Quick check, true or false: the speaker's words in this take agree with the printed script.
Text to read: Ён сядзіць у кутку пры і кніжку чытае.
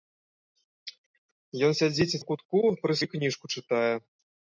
true